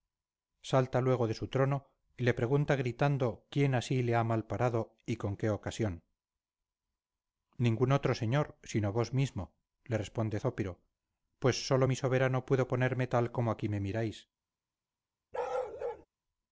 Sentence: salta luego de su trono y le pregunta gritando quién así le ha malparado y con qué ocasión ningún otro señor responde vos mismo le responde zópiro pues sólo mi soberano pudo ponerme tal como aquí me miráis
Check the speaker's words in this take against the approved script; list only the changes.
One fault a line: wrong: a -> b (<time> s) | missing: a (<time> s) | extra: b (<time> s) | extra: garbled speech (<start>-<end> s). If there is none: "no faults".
wrong: responde -> sino (8.6 s)